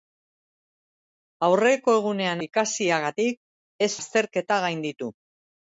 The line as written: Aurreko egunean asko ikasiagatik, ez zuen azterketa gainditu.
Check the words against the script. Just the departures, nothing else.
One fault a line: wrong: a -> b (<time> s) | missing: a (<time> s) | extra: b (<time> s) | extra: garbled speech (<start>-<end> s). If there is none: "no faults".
missing: asko (2.4 s)
missing: zuen (3.9 s)